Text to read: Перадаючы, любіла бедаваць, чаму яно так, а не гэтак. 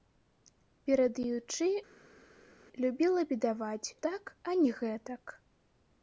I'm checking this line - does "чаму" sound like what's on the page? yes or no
no